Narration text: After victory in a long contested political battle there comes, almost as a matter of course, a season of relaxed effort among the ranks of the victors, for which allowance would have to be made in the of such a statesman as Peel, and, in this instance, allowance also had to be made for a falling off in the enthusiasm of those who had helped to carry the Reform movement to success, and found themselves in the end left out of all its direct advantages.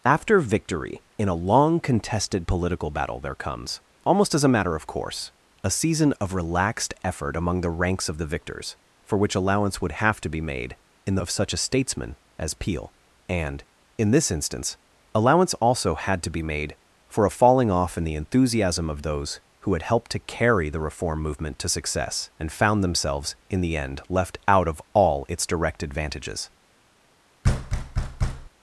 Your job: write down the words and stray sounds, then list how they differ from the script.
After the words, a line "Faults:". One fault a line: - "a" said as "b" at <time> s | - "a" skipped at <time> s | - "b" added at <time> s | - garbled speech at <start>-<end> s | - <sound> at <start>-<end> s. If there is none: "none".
After victory in a long contested political battle there comes, almost as a matter of course, a season of relaxed effort among the ranks of the victors, for which allowance would have to be made in the of such a statesman as Peel, and, in this instance, allowance also had to be made for a falling off in the enthusiasm of those who had helped to carry the Reform movement to success, and found themselves in the end left out of all its direct advantages.
Faults:
- thud at 27.4-28.5 s